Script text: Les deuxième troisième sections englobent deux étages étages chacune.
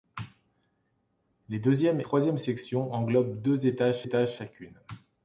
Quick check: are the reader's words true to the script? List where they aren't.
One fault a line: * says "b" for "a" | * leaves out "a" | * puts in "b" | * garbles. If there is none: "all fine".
all fine